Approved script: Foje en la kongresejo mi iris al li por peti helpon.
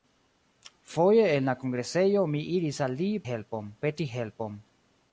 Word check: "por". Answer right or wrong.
wrong